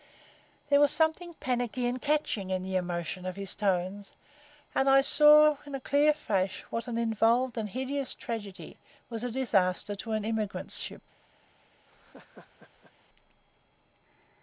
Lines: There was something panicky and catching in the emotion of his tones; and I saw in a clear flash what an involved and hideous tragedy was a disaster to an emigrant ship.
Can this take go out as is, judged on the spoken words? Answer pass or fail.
pass